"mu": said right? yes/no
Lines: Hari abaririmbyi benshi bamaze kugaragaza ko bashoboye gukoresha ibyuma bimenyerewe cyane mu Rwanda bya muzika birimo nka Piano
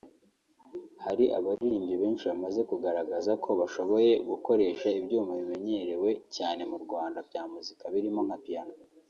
yes